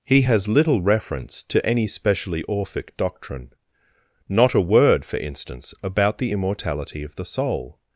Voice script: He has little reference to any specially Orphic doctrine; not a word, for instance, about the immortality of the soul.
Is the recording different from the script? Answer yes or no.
no